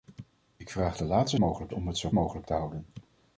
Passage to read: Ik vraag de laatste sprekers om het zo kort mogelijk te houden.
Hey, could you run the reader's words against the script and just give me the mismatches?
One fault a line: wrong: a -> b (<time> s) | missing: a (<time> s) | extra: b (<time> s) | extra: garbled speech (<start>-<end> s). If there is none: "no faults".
wrong: sprekers -> mogelijk (1.4 s)
missing: kort (2.1 s)